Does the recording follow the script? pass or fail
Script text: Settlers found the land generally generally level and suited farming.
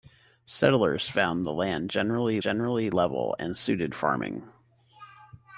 pass